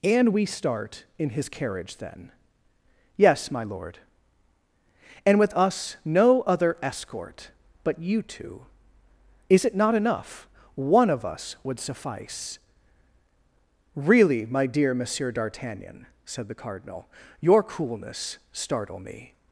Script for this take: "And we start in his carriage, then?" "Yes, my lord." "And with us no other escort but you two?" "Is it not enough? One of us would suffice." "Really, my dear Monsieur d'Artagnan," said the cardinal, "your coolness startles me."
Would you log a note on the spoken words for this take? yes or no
yes